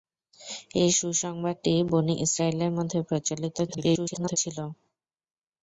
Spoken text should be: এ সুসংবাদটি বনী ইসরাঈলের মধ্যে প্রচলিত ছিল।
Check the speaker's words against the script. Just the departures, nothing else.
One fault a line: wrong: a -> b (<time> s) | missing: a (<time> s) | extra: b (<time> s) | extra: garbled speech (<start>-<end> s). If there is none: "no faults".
extra: garbled speech (3.7-4.4 s)